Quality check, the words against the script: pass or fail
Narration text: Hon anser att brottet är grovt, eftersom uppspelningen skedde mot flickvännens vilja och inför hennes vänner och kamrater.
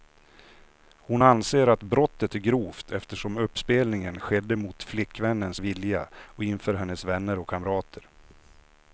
pass